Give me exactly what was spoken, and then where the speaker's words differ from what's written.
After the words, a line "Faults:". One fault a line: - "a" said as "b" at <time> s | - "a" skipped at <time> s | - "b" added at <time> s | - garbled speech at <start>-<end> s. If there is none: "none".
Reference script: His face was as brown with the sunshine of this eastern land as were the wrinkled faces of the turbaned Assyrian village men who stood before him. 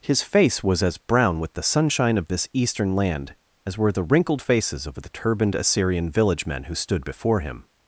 His face was as brown with the sunshine of this eastern land as were the wrinkled faces of the turbaned Assyrian village men who stood before him.
Faults:
none